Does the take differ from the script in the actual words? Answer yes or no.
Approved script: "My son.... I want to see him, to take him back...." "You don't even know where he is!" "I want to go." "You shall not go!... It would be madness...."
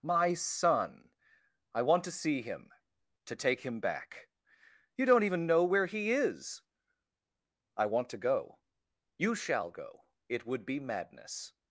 yes